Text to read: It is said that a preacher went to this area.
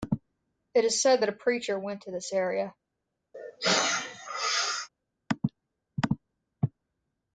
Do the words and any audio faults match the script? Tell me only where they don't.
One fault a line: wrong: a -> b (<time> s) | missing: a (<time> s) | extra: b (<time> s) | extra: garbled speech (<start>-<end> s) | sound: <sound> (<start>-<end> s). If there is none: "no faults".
sound: sneeze (3.3-4.9 s)